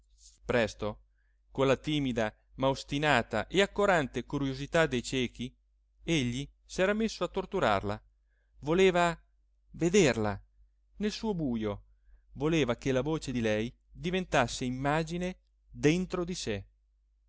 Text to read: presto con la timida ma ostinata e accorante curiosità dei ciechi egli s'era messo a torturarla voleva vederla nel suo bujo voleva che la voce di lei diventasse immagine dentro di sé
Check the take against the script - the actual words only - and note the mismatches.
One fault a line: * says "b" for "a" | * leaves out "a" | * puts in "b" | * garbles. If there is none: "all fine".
all fine